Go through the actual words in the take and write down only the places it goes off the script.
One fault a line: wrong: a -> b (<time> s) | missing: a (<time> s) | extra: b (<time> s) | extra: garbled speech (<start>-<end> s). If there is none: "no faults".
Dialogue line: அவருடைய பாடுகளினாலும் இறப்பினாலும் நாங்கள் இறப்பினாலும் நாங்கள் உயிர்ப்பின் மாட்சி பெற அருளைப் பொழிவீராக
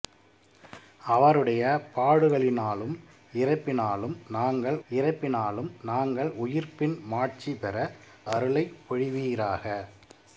no faults